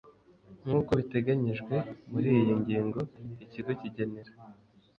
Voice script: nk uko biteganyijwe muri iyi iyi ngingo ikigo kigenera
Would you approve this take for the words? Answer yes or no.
no